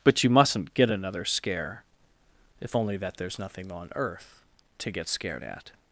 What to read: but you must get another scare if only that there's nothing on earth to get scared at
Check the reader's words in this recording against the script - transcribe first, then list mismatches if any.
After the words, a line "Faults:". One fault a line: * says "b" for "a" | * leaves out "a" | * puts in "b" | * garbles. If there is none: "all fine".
but you mustn't get another scare if only that there's nothing on earth to get scared at
Faults:
* says "mustn't" for "must"